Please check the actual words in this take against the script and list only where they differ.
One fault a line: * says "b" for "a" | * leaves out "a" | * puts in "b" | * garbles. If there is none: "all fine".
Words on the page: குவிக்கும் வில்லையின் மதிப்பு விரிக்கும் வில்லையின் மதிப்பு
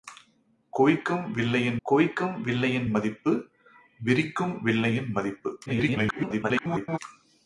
* puts in "குவிக்கும் வில்லையின்"
* garbles